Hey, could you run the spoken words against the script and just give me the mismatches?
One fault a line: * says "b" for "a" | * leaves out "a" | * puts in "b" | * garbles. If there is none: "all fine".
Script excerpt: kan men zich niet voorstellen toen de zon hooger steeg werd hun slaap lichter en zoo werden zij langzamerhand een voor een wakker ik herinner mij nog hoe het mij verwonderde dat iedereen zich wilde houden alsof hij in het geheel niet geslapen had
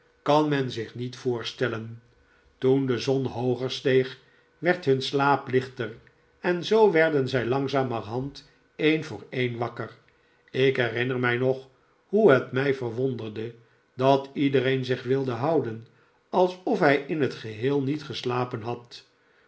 all fine